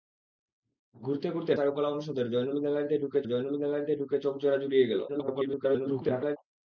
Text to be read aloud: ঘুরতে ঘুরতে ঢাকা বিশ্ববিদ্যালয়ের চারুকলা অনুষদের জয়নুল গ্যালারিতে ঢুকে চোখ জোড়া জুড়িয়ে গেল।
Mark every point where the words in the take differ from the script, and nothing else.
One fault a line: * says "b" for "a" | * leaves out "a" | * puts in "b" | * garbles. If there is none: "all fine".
* says "চারুকলা অনুষদের জয়নুল গ্যালারিতে ঢুকে" for "ঢাকা বিশ্ববিদ্যালয়ের চারুকলা অনুষদের"
* garbles